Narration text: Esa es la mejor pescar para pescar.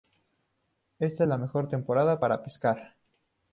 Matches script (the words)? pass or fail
fail